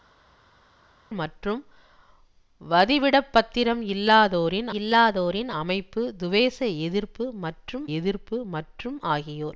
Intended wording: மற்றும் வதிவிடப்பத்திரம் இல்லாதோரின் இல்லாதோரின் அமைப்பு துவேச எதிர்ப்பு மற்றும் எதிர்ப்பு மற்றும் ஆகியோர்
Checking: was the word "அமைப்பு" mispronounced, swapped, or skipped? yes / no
no